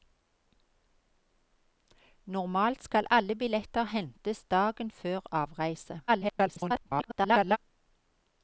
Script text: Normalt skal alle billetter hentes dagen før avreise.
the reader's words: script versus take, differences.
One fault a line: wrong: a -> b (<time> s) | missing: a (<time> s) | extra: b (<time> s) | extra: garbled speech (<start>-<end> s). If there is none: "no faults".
extra: garbled speech (6.1-7.6 s)